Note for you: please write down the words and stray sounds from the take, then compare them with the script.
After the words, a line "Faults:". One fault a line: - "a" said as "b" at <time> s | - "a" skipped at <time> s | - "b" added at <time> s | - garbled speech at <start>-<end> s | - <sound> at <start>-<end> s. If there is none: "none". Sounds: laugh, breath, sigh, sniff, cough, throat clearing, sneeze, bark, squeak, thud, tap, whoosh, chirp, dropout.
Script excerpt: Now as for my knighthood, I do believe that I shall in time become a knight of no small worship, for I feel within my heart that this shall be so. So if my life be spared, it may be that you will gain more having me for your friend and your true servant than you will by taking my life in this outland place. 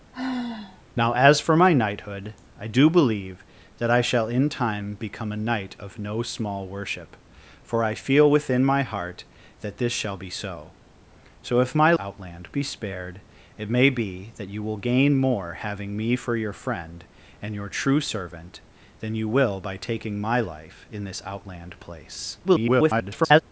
Now as for my knighthood, I do believe that I shall in time become a knight of no small worship, for I feel within my heart that this shall be so. So if my outland be spared, it may be that you will gain more having me for your friend and your true servant than you will by taking my life in this outland place. [garbled]
Faults:
- sigh at 0.1-0.8 s
- "life" said as "outland" at 12.0 s
- garbled speech at 22.4-23.4 s